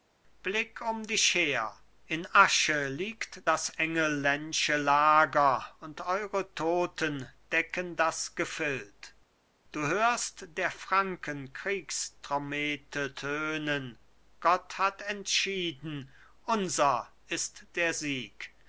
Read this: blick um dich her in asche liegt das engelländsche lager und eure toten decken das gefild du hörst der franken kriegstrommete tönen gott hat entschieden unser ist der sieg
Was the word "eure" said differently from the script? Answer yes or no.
no